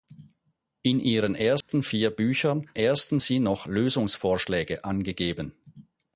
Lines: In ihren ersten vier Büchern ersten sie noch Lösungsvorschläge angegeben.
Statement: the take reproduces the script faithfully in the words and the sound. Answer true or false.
false